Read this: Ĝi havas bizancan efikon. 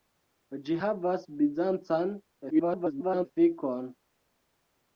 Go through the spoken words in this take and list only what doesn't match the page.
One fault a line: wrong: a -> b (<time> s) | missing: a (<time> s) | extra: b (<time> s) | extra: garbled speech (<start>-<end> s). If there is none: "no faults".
extra: garbled speech (2.5-3.3 s)